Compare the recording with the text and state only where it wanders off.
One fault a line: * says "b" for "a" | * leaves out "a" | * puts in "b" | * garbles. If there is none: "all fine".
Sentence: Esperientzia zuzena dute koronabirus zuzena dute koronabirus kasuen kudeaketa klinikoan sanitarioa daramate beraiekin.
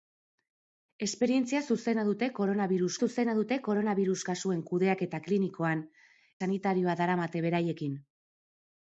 all fine